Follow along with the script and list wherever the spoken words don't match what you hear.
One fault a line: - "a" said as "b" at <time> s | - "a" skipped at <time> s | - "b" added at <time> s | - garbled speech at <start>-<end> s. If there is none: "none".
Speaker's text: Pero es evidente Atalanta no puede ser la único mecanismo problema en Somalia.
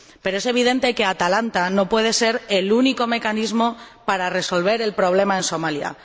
- "que" added at 0.9 s
- "la" said as "el" at 2.5 s
- "para resolver el" added at 4.0 s